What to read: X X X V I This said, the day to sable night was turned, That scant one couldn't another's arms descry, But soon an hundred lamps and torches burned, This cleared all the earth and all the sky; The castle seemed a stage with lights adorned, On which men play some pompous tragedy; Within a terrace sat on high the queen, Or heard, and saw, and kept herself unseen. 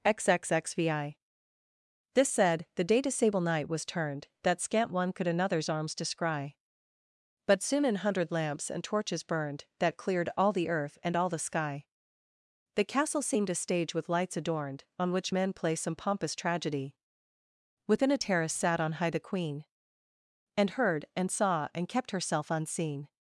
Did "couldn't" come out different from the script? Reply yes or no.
yes